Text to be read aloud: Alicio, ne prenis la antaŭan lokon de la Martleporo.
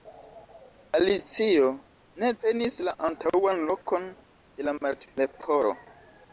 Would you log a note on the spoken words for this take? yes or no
no